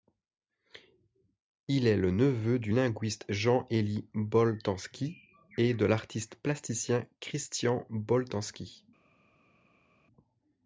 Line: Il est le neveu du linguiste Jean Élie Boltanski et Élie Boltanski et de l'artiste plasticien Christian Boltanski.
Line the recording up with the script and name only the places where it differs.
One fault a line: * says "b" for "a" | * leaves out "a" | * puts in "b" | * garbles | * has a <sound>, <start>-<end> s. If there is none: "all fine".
* leaves out "Élie Boltanski et"